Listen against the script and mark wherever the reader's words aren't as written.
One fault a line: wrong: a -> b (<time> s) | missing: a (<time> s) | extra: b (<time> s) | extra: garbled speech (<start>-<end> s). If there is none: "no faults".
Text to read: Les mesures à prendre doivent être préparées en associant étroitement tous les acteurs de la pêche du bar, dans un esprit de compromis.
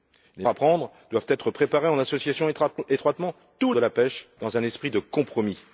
missing: mesures (0.5 s)
missing: les acteurs (3.7 s)
missing: du bar (4.3 s)